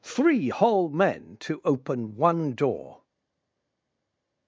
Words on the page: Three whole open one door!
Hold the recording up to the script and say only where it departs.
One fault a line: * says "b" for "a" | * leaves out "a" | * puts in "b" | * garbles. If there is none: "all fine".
* puts in "men to"